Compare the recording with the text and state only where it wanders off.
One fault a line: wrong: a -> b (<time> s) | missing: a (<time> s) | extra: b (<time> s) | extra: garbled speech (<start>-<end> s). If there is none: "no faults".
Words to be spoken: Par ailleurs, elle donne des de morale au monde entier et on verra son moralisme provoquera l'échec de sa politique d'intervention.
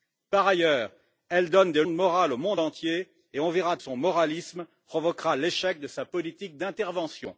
no faults